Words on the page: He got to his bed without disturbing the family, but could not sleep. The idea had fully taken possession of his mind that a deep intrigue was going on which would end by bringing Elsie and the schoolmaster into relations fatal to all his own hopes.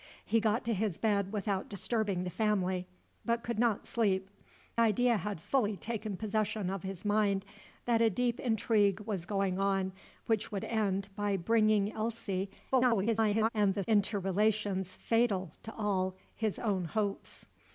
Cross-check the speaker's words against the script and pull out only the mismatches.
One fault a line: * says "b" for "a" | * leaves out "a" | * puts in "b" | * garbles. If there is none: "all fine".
* leaves out "The"
* garbles
* leaves out "schoolmaster"